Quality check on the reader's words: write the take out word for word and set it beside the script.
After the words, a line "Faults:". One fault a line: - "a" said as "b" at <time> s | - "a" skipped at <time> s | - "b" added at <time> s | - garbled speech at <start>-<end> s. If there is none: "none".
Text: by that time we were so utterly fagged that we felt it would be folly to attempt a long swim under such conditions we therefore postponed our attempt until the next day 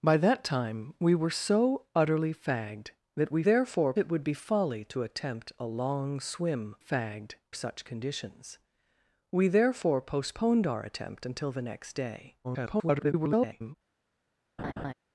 by that time we were so utterly fagged that we therefore it would be folly to attempt a long swim fagged such conditions we therefore postponed our attempt until the next day [garbled]
Faults:
- "felt" said as "therefore" at 3.4 s
- "under" said as "fagged" at 6.8 s
- garbled speech at 12.4-13.8 s